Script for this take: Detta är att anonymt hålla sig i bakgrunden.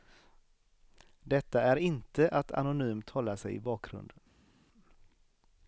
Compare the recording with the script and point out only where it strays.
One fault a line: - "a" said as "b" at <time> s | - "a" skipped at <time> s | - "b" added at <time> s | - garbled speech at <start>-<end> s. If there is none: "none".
- "inte" added at 1.8 s